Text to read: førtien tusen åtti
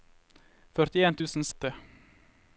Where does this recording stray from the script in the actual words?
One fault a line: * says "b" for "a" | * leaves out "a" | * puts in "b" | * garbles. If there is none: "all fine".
all fine